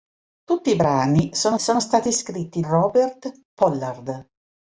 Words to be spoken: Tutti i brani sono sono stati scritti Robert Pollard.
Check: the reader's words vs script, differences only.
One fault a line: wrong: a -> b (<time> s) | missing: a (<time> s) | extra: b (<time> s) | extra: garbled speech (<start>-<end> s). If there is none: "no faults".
no faults